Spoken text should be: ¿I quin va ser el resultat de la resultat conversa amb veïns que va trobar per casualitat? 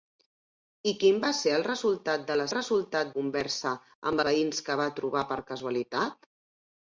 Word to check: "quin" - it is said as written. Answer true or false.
true